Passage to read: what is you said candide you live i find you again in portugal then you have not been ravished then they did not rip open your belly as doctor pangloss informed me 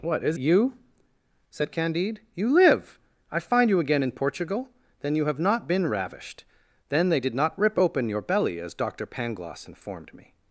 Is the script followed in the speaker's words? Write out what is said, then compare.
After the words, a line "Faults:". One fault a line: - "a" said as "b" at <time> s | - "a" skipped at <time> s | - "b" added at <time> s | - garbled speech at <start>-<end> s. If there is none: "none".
what is you said candide you live i find you again in portugal then you have not been ravished then they did not rip open your belly as doctor pangloss informed me
Faults:
none